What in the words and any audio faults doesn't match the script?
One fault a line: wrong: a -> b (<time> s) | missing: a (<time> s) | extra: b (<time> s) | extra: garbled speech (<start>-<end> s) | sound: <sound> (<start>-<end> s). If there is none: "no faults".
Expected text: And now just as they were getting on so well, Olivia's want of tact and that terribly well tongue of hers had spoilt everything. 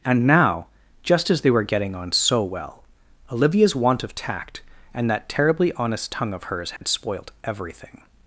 wrong: well -> honest (5.7 s)
sound: dropout (6.8-6.8 s)